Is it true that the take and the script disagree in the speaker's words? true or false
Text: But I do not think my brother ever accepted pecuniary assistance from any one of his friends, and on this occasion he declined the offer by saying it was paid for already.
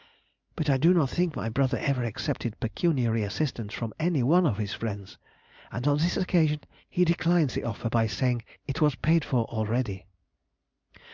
false